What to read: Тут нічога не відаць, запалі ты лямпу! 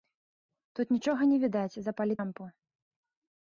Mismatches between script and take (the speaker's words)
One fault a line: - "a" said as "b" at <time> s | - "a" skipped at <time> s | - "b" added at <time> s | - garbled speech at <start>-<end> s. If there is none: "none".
- "ты" skipped at 2.1 s